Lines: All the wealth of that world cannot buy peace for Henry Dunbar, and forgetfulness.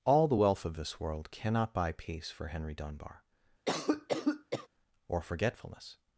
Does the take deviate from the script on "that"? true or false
true